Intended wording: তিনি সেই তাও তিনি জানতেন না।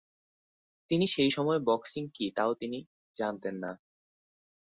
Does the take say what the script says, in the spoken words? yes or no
no